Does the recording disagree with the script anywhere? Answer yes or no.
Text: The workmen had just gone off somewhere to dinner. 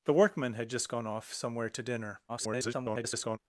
yes